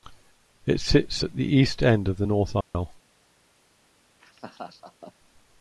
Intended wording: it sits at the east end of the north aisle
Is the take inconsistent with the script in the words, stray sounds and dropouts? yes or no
yes